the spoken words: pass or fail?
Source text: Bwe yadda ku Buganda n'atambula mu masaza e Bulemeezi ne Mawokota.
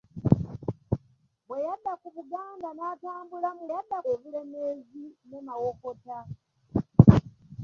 fail